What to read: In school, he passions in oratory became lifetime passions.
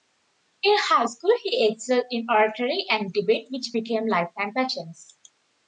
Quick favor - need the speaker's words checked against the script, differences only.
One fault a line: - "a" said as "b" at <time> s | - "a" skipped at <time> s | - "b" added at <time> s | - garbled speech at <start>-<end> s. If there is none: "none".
- "high" added at 0.8 s
- "passions" said as "excelled" at 1.7 s
- "and debate which" added at 2.9 s